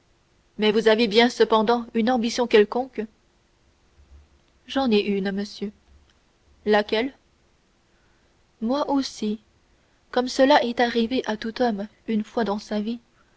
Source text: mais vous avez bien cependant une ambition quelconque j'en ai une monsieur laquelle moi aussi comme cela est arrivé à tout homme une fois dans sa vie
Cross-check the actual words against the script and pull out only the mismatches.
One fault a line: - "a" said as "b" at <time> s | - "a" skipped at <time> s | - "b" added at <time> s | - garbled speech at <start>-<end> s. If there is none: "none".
none